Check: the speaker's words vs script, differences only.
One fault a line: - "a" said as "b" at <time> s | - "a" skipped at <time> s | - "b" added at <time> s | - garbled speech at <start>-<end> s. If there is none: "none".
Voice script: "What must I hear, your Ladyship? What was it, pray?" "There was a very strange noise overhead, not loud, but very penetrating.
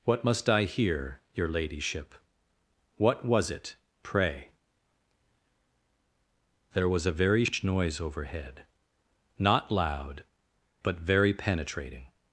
- "strange" said as "sh" at 7.4 s